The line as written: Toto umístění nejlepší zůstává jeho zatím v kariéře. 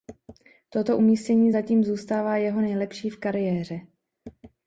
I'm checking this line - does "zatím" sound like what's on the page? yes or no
no